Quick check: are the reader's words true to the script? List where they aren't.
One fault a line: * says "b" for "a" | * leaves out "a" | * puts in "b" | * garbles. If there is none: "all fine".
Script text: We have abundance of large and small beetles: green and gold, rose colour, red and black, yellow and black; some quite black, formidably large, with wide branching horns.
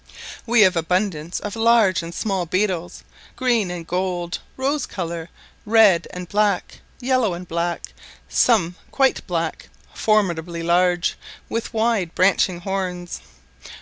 all fine